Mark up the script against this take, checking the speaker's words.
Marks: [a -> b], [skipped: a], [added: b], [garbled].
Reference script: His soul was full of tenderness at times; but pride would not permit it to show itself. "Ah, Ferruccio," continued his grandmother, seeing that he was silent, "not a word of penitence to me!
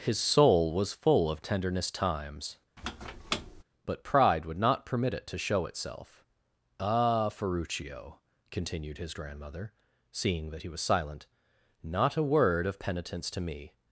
His soul was full of tenderness [skipped: at] times; but pride would not permit it to show itself. "Ah, Ferruccio," continued his grandmother, seeing that he was silent, "not a word of penitence to me!